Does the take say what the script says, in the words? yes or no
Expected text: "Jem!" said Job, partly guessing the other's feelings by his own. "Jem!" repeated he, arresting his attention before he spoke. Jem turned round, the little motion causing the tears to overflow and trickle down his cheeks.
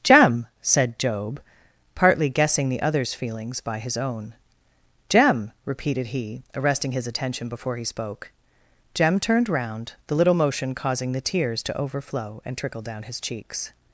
yes